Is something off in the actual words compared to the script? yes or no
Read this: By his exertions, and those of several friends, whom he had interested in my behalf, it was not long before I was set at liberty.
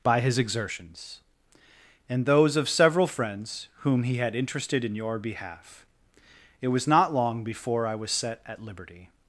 yes